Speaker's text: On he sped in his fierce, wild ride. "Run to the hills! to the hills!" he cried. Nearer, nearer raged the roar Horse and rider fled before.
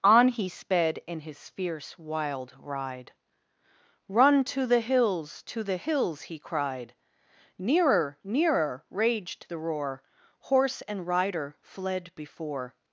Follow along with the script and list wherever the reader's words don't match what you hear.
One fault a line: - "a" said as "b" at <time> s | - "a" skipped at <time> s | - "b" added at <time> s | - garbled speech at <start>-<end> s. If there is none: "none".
none